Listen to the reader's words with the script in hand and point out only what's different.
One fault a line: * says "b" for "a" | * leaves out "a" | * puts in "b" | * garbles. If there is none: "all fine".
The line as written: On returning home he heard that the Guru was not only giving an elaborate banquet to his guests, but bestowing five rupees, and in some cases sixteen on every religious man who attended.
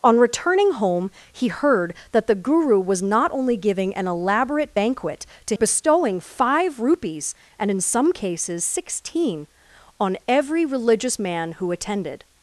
* leaves out "his guests but"